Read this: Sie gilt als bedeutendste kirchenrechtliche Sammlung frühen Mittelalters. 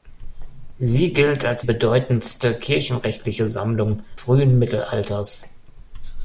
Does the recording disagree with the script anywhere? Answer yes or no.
no